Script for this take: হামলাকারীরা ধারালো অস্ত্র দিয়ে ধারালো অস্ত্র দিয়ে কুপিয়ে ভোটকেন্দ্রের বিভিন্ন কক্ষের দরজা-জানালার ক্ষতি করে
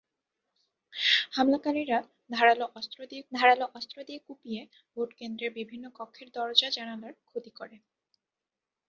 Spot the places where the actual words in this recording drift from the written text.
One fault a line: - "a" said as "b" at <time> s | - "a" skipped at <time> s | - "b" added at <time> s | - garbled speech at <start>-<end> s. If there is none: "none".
none